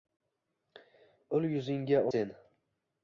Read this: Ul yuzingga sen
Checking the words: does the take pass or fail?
pass